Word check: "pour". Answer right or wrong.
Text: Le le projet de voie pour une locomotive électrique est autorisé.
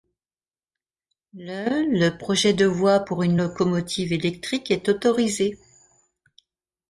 right